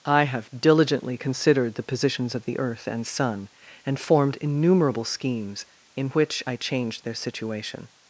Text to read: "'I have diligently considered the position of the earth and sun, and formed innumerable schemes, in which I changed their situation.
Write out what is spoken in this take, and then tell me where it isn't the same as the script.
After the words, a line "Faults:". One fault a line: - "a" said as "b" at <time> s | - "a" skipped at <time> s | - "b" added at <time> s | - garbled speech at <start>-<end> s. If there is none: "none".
"'I have diligently considered the positions of the earth and sun, and formed innumerable schemes, in which I changed their situation.
Faults:
- "position" said as "positions" at 1.8 s